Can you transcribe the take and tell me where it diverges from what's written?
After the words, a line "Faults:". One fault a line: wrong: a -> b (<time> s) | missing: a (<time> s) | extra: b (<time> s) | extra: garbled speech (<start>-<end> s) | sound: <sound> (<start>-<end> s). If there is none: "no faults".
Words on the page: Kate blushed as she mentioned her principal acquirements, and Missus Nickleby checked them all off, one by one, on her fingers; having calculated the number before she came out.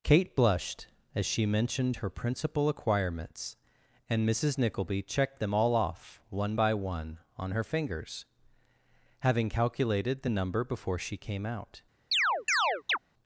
Kate blushed as she mentioned her principal acquirements, and Missus Nickleby checked them all off, one by one, on her fingers; having calculated the number before she came out.
Faults:
sound: chirp (12.1-13.0 s)